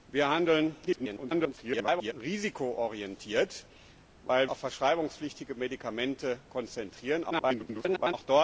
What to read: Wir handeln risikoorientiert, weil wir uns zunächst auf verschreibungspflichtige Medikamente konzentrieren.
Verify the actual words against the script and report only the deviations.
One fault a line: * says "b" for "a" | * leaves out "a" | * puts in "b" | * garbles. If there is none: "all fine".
* garbles
* leaves out "wir uns zunächst"
* garbles